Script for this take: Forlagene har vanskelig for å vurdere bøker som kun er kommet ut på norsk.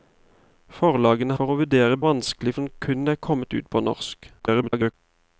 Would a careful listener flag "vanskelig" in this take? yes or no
yes